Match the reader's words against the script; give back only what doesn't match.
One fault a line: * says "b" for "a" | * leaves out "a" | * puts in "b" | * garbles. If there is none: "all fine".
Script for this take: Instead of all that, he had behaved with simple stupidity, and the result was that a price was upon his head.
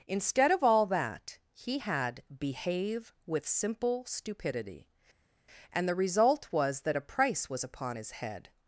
* says "behave" for "behaved"